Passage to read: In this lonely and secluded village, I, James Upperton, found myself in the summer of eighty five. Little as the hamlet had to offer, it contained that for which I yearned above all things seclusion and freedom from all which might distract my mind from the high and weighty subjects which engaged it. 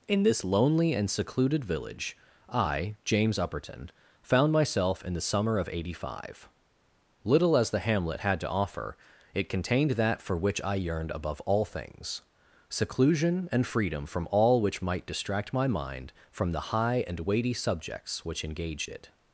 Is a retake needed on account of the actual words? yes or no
no